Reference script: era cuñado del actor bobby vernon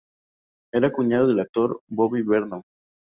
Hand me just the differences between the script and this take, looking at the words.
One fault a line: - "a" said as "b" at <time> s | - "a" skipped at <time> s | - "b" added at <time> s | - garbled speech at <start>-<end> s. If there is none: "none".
none